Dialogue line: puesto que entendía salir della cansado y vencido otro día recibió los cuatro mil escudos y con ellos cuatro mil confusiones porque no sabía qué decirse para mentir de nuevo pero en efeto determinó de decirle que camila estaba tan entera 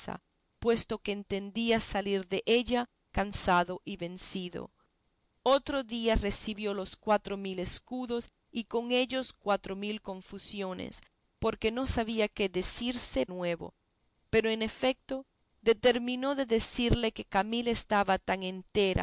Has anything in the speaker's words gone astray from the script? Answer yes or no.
yes